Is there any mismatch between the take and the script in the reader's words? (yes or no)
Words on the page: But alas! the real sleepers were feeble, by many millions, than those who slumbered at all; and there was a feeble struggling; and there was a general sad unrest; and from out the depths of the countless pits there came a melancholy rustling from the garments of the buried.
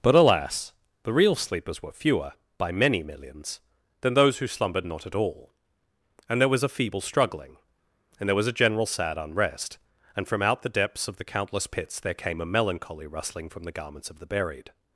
yes